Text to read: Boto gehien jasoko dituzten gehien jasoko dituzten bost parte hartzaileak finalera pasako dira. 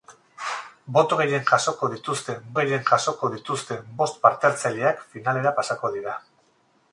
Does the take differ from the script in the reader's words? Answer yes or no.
no